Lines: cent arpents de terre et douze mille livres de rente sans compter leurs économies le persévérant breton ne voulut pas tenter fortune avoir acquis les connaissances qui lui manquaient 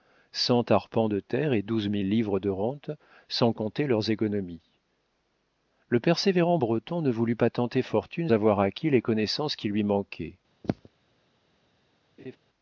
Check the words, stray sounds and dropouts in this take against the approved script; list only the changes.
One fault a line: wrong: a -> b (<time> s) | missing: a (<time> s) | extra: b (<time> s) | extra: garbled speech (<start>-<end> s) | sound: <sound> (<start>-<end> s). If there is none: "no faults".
sound: throat clearing (10.6-10.9 s)
sound: laugh (12.2-12.4 s)